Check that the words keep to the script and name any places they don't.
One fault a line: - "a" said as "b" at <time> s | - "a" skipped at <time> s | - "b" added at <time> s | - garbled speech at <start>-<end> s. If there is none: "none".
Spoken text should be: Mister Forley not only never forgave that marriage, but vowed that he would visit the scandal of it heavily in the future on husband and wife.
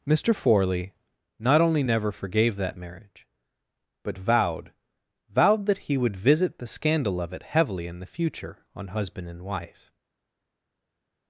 - "vowed" added at 5.3 s